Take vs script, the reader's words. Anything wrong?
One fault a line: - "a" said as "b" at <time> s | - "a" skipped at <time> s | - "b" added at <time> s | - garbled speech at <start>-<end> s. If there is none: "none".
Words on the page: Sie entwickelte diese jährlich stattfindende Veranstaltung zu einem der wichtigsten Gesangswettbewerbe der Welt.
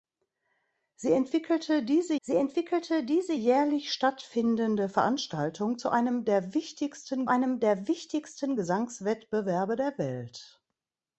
- "sie entwickelte diese" added at 2.2 s
- "einem der wichtigsten" added at 7.3 s